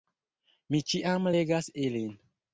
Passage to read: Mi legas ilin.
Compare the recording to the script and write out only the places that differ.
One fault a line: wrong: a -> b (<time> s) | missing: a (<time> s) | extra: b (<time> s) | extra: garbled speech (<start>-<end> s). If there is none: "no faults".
extra: ĉiam (0.9 s)